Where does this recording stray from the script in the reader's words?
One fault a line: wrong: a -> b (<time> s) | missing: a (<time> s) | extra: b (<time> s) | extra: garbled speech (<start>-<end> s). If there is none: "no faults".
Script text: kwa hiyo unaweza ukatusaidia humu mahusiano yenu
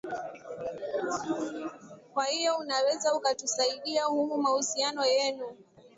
no faults